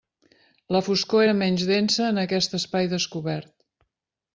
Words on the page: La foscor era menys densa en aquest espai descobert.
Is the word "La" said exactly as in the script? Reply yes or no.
yes